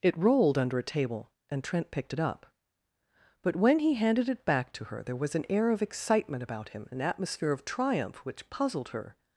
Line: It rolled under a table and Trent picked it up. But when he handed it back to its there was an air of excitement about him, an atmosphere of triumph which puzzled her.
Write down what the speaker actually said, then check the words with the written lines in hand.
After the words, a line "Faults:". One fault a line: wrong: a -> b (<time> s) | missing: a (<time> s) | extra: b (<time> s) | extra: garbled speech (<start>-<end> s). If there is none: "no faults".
It rolled under a table and Trent picked it up. But when he handed it back to her there was an air of excitement about him, an atmosphere of triumph which puzzled her.
Faults:
wrong: its -> her (4.9 s)